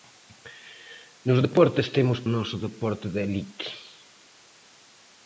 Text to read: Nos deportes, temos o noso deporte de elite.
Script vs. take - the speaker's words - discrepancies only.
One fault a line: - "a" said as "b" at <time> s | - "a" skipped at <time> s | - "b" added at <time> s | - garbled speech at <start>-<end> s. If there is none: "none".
none